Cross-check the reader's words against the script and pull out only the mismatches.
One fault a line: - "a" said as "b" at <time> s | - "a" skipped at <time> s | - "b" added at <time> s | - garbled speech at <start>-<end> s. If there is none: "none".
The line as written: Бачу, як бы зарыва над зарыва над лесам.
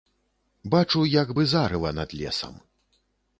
- "зарыва над" skipped at 2.1 s